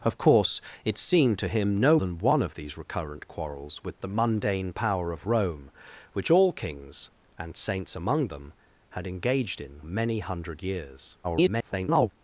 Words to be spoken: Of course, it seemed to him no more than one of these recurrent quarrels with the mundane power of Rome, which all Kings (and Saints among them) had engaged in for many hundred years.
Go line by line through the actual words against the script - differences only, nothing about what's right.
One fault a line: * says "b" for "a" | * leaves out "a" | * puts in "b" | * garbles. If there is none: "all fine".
* leaves out "more"
* leaves out "for"
* garbles